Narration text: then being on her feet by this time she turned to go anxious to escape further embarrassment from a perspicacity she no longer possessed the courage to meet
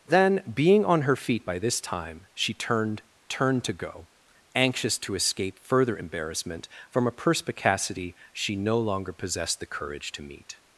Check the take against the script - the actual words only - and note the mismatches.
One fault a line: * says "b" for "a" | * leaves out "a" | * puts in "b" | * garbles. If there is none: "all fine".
* puts in "turned"